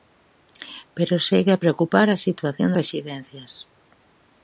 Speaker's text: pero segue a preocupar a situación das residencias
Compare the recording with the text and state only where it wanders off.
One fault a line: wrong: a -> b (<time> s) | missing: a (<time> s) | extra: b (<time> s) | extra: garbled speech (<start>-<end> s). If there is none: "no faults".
missing: das (2.7 s)